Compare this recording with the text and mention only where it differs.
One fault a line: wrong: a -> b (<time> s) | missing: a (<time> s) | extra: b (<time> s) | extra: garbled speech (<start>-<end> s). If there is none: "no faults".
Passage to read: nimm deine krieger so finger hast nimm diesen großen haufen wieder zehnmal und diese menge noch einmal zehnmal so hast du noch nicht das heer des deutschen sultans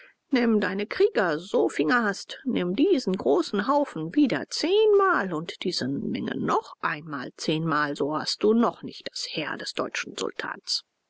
no faults